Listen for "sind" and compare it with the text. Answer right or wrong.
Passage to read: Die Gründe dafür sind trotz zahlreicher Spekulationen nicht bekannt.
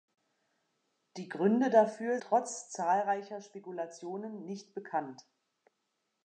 wrong